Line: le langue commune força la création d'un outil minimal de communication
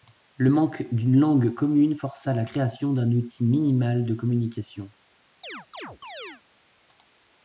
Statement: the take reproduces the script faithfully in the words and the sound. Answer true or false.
false